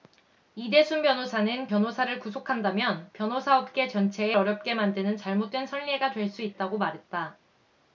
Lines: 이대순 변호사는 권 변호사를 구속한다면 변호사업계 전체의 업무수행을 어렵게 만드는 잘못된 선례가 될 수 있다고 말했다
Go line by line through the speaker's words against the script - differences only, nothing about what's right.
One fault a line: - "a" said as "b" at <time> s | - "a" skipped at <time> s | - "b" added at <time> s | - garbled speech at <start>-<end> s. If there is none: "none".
- "권" skipped at 1.7 s
- "업무수행을" skipped at 4.4 s